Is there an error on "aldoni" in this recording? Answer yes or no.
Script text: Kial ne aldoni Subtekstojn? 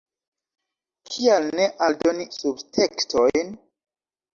no